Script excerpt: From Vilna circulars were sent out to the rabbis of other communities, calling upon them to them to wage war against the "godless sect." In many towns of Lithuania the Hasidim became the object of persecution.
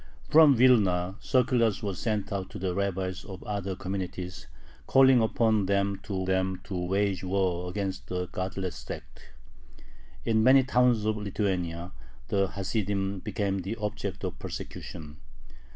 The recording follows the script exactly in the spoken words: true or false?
true